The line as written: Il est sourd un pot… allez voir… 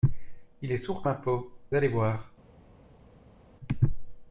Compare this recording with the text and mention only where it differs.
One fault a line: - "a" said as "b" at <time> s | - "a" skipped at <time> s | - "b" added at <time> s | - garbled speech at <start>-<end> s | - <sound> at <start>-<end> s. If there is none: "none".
none